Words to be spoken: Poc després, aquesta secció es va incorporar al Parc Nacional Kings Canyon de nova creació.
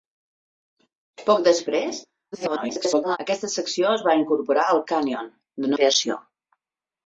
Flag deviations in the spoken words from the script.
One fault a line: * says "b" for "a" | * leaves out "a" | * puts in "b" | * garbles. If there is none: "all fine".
* garbles
* leaves out "Parc Nacional Kings"
* leaves out "nova"